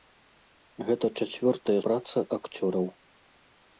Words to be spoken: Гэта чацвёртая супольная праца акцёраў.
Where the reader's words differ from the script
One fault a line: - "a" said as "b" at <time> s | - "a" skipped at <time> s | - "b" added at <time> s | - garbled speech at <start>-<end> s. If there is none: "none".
- "супольная" skipped at 1.8 s